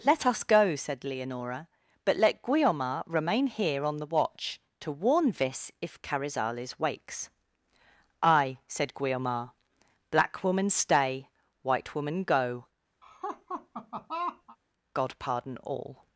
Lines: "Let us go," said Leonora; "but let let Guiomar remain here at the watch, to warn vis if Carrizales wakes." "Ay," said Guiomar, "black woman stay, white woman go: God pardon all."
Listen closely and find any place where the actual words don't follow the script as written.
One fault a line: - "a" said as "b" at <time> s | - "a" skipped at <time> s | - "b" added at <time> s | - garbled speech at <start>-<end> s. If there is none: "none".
- "let" skipped at 2.4 s
- "at" said as "on" at 3.9 s